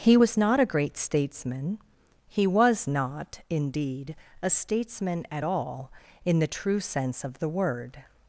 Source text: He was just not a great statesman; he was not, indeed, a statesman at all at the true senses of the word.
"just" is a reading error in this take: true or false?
true